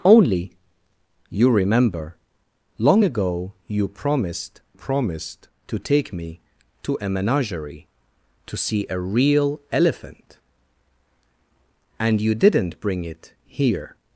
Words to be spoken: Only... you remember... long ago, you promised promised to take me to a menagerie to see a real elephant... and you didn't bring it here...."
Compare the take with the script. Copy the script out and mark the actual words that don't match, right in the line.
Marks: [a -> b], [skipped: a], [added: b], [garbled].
Only... you remember... long ago, you promised promised to take me to a menagerie to see a real elephant... and you didn't bring it here...."